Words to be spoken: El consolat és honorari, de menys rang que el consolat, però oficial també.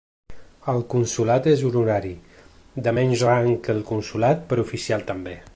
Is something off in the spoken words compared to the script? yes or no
no